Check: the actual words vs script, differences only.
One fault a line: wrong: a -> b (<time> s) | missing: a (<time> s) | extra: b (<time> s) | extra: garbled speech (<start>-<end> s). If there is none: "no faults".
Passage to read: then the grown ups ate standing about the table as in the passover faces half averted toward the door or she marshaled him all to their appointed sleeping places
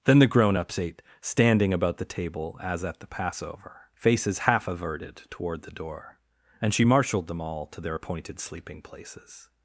wrong: in -> at (2.8 s)
wrong: or -> and (6.6 s)
wrong: him -> them (7.3 s)